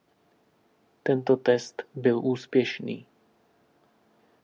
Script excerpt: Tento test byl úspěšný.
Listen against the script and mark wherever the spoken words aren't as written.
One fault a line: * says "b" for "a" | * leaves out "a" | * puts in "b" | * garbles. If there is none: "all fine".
all fine